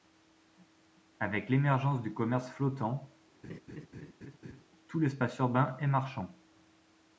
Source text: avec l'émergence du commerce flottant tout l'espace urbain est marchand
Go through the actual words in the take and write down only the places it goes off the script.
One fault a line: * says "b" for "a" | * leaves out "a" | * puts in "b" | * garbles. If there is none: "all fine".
all fine